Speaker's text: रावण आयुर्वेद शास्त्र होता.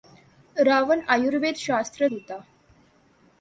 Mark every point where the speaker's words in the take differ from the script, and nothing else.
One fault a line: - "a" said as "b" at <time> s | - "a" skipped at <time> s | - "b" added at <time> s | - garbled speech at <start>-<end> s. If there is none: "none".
none